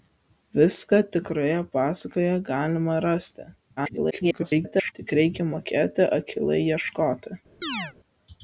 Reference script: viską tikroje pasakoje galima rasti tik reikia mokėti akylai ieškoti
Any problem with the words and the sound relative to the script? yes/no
yes